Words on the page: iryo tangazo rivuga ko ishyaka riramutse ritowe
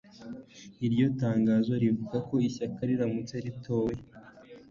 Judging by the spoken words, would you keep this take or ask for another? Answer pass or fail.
pass